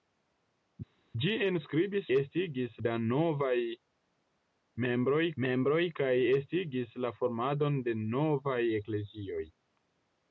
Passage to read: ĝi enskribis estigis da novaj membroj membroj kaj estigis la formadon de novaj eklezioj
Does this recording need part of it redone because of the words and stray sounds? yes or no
no